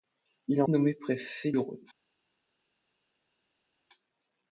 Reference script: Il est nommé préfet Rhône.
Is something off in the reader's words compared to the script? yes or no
no